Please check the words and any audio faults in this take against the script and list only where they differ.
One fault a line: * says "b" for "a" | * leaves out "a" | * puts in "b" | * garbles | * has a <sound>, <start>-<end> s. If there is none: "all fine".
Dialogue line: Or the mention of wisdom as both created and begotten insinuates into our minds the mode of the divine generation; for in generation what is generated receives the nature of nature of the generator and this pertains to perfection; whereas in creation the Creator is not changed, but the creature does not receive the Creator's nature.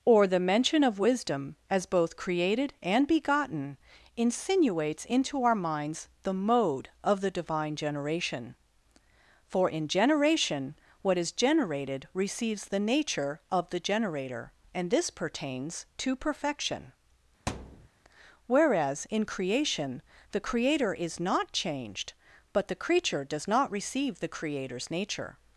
* leaves out "nature of"
* has a thud, 17.5-17.9 s